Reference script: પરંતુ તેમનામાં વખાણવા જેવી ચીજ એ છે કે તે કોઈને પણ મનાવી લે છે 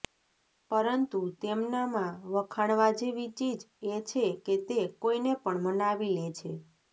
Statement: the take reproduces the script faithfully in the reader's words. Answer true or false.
true